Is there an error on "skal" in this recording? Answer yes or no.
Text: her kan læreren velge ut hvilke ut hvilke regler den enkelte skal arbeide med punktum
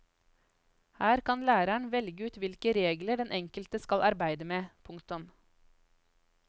no